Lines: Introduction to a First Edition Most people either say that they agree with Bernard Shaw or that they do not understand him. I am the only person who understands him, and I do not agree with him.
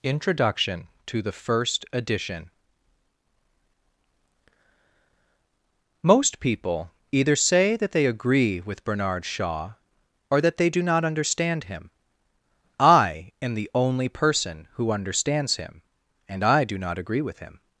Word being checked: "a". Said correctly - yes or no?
no